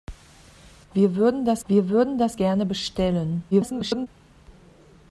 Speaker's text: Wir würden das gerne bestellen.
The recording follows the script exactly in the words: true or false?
false